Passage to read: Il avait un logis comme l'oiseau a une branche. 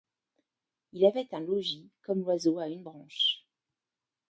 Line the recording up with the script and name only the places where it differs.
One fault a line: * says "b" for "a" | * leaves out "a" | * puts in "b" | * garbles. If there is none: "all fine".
all fine